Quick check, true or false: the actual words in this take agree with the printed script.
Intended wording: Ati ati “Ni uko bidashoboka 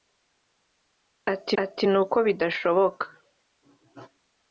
true